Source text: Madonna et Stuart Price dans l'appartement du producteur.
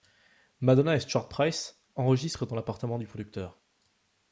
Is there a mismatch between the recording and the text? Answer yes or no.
yes